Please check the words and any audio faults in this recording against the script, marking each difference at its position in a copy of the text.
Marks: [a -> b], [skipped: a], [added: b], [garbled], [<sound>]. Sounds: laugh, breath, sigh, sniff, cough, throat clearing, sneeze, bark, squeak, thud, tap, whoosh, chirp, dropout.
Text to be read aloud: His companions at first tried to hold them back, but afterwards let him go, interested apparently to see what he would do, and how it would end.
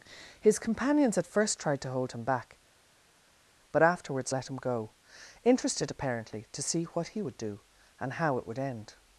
His companions at first tried to hold [them -> him] back, but afterwards let him go, interested apparently to see what he would do, and how it would end.